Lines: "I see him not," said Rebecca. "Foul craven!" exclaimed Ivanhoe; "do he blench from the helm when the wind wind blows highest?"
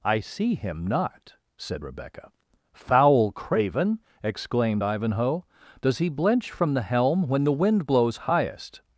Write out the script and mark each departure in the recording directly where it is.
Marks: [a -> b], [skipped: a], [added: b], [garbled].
"I see him not," said Rebecca. "Foul craven!" exclaimed Ivanhoe; ["do -> does] he blench from the helm when the wind [skipped: wind] blows highest?"